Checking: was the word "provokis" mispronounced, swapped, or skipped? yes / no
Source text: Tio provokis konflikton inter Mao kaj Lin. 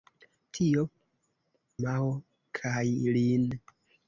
yes